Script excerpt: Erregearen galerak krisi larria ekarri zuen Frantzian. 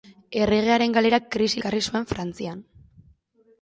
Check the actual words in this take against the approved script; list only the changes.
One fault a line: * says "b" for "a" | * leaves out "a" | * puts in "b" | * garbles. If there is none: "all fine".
* leaves out "larria"